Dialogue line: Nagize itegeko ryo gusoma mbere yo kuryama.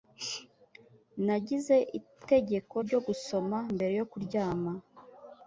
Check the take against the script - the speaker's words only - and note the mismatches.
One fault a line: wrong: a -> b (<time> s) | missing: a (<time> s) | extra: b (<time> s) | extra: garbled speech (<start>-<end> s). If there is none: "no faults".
no faults